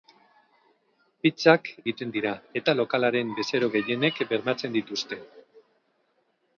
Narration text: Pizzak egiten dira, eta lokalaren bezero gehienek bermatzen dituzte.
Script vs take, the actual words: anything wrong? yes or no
no